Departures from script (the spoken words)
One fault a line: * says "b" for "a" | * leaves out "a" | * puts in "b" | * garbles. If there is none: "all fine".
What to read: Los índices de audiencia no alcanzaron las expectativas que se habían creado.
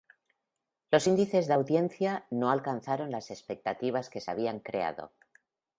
all fine